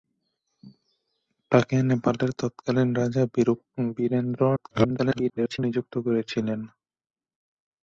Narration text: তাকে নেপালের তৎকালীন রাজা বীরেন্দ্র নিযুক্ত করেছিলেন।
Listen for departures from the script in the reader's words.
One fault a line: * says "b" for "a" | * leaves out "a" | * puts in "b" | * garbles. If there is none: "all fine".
* garbles